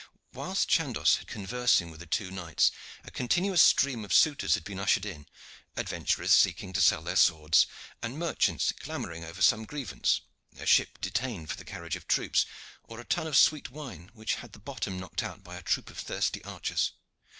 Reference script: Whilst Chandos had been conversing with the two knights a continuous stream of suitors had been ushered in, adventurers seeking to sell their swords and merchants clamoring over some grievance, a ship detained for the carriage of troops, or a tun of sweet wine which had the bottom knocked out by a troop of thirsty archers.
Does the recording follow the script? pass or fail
fail